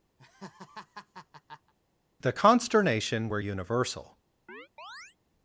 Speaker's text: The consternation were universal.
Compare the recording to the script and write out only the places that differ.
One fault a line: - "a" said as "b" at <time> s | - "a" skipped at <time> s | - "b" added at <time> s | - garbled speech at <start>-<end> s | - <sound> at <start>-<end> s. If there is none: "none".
- laugh at 0.2-1.7 s
- chirp at 4.5-5.2 s